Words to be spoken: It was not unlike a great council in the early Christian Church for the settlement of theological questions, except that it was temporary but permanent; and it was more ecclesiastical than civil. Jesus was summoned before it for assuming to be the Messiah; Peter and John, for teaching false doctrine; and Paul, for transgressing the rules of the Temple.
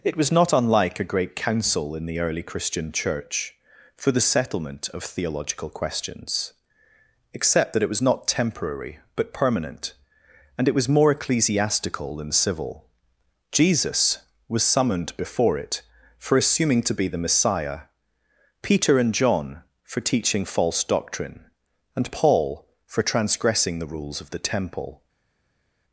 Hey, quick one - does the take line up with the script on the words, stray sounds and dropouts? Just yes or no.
no